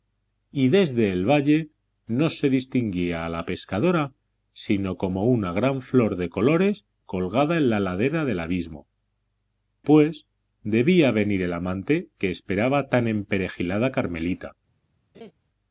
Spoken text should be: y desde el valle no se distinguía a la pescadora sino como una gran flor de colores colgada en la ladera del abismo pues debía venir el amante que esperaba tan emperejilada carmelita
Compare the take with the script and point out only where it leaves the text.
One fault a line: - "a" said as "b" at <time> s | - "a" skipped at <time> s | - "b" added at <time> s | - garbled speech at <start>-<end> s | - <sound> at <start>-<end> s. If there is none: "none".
- laugh at 15.1-15.3 s